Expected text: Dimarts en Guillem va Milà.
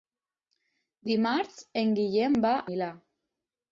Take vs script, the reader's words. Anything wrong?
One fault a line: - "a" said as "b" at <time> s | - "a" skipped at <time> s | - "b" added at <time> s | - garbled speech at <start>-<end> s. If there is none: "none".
none